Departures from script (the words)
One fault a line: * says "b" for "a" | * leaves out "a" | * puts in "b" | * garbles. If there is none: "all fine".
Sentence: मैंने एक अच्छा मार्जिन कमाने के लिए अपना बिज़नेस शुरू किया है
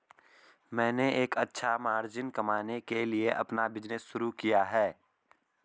all fine